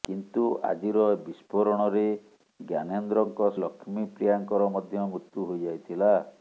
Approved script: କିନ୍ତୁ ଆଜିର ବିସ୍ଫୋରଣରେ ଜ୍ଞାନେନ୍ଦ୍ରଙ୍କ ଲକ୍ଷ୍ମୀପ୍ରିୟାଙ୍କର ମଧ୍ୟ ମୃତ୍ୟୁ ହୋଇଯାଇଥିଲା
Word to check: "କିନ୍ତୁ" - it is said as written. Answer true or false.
true